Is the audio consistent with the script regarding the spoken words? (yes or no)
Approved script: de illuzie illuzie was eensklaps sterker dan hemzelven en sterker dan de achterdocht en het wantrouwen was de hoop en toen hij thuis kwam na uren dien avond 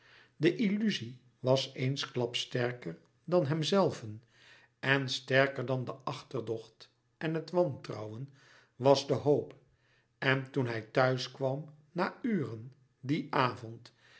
no